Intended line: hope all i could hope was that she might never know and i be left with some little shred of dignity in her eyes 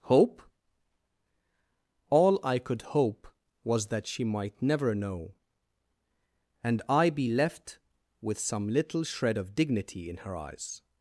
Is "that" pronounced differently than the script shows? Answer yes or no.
no